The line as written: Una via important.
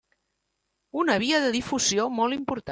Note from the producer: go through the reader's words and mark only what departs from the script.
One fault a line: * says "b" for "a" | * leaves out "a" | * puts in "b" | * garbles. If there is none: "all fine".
* puts in "de difusió molt"